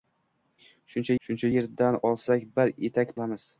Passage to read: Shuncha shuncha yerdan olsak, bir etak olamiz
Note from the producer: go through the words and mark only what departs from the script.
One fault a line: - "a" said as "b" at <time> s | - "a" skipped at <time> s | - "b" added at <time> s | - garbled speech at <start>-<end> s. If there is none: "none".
none